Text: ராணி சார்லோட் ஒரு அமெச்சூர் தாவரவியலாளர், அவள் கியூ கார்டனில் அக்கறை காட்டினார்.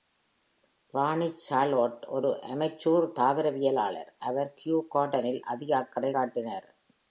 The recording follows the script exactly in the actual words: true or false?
false